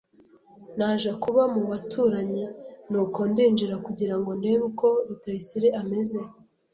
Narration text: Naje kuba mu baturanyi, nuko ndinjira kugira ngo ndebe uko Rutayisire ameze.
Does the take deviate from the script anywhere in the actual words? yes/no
no